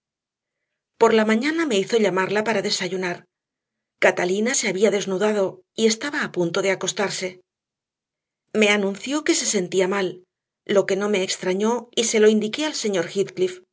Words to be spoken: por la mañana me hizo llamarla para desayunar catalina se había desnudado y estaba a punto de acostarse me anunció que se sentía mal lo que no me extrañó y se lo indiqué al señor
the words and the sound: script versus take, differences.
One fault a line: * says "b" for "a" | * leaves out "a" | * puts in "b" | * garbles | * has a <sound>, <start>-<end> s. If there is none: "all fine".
all fine